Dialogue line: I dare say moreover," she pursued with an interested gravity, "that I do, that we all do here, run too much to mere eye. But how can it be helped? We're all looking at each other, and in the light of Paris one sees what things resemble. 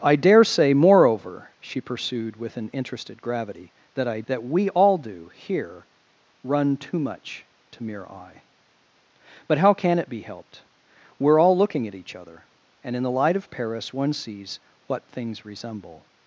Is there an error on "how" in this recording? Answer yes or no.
no